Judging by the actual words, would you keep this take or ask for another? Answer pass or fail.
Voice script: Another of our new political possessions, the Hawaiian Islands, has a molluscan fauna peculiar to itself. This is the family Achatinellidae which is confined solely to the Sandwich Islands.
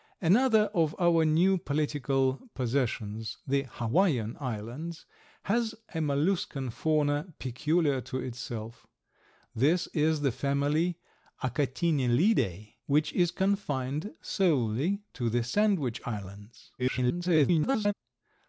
fail